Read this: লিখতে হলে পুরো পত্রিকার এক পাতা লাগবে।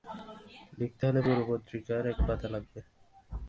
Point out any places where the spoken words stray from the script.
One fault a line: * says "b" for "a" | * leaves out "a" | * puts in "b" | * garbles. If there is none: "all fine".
all fine